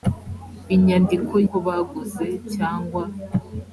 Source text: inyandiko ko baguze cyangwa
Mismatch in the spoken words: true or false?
false